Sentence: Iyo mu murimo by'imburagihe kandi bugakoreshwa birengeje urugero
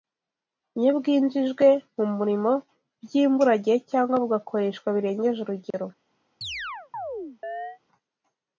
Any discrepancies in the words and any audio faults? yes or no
yes